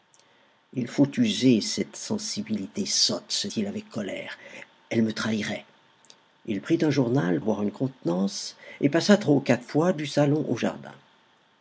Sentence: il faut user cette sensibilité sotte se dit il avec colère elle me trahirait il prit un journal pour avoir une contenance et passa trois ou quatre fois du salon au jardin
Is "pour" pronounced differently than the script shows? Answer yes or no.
yes